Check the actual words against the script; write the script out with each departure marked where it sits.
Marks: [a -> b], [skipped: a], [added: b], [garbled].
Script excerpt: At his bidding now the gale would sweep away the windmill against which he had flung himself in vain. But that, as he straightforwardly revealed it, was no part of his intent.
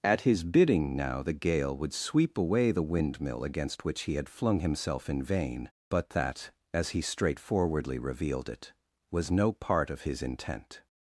At his bidding now the gale would sweep away the windmill against which he had flung himself in vain. But that, as he straightforwardly revealed it, was no part of his intent.